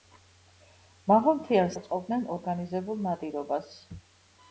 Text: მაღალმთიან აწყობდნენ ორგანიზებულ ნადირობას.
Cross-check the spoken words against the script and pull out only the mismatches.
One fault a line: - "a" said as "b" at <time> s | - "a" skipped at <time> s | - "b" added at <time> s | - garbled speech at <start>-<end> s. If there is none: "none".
none